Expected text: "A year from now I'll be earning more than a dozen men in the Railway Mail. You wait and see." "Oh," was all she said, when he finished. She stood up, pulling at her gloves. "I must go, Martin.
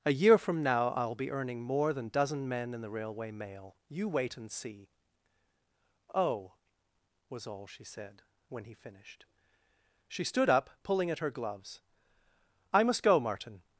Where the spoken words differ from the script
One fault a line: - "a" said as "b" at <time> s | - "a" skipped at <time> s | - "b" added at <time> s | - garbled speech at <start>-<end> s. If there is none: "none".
- "a" skipped at 2.1 s